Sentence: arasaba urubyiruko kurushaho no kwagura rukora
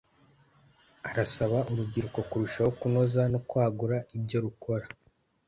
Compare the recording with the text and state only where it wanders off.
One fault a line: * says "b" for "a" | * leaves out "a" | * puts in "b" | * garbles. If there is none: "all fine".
* puts in "kunoza"
* puts in "ibyo"